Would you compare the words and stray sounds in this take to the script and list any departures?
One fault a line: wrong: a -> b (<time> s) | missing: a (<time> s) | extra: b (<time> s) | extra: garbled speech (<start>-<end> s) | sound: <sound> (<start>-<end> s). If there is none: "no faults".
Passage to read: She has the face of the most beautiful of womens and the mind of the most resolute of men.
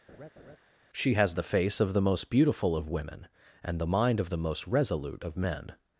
sound: laugh (0.1-0.6 s)
wrong: womens -> women (2.9 s)